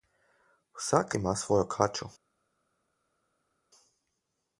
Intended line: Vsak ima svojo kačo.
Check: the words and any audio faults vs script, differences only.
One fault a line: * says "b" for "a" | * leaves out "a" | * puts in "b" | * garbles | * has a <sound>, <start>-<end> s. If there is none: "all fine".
all fine